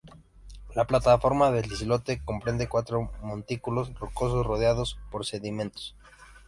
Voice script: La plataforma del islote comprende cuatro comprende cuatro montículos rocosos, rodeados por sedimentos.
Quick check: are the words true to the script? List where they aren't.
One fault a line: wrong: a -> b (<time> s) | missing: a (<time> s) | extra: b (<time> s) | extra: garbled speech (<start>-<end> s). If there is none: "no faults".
missing: comprende cuatro (3.1 s)